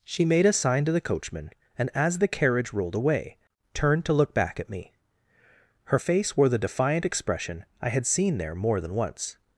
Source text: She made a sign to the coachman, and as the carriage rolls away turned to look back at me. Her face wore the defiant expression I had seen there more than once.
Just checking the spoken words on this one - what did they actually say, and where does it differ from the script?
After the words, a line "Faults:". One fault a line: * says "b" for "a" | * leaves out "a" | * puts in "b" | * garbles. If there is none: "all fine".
She made a sign to the coachman, and as the carriage rolled away turned to look back at me. Her face wore the defiant expression I had seen there more than once.
Faults:
* says "rolled" for "rolls"